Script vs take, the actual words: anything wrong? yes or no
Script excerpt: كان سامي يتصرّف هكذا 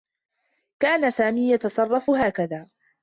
no